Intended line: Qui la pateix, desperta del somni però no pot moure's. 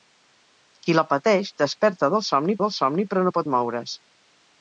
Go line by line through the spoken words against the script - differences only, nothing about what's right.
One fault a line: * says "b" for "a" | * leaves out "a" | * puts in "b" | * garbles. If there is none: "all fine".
* puts in "del somni"